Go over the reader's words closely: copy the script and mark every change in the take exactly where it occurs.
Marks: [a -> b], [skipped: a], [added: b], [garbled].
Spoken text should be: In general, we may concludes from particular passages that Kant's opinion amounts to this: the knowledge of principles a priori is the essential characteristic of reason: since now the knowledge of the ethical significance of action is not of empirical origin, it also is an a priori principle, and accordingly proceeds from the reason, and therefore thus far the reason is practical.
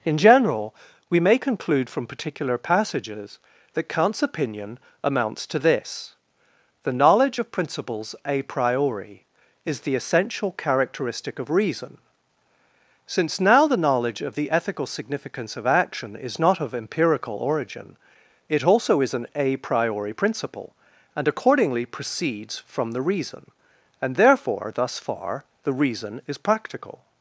In general, we may [concludes -> conclude] from particular passages that Kant's opinion amounts to this: the knowledge of principles a priori is the essential characteristic of reason: since now the knowledge of the ethical significance of action is not of empirical origin, it also is an a priori principle, and accordingly proceeds from the reason, and therefore thus far the reason is practical.